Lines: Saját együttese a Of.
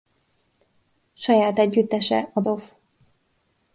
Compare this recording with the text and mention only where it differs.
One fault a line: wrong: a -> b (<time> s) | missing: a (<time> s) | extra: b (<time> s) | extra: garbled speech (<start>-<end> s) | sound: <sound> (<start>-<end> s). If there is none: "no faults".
no faults